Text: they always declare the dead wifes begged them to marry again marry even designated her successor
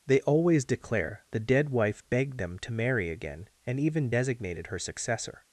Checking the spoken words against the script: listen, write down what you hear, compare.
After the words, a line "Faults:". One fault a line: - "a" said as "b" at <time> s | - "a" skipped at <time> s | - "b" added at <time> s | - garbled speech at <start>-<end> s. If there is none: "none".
they always declare the dead wife begged them to marry again and even designated her successor
Faults:
- "wifes" said as "wife" at 1.7 s
- "marry" said as "and" at 3.6 s